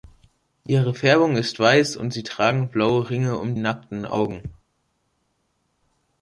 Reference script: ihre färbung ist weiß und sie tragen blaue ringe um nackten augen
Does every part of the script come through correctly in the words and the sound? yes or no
yes